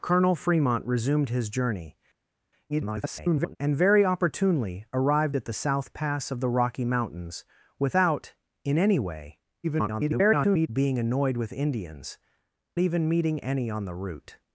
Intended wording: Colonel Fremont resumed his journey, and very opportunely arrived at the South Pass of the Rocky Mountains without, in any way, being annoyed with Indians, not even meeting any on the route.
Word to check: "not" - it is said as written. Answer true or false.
false